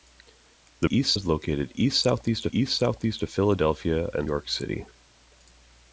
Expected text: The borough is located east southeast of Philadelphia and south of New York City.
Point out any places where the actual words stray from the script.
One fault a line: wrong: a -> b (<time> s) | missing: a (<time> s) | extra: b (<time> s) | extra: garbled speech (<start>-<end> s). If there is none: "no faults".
wrong: borough -> east (0.9 s)
extra: east southeast (2.5 s)
missing: south of New (4.3 s)